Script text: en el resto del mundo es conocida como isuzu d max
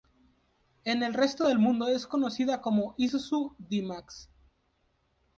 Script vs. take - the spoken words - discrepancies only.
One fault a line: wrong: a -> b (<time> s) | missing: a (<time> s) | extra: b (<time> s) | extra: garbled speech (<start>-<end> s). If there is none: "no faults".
no faults